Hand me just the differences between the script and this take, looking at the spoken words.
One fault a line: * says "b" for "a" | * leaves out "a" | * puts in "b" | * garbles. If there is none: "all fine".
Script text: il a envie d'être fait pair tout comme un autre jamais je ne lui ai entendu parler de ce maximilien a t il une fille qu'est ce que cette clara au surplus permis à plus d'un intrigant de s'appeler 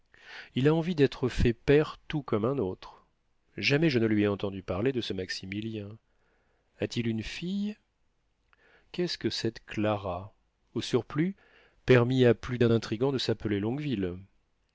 all fine